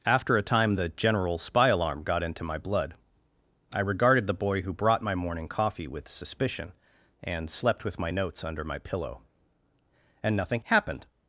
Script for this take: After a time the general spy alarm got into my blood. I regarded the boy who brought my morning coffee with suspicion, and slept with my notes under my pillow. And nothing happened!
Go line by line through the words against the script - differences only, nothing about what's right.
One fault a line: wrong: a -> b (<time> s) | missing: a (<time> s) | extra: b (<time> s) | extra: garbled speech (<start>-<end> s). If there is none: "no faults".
no faults